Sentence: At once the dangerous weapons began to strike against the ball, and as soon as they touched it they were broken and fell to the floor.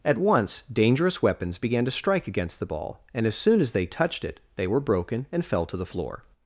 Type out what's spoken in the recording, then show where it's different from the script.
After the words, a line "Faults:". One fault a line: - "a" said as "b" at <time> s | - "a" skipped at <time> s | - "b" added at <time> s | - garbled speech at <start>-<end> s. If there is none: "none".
At once dangerous weapons began to strike against the ball, and as soon as they touched it they were broken and fell to the floor.
Faults:
- "the" skipped at 0.6 s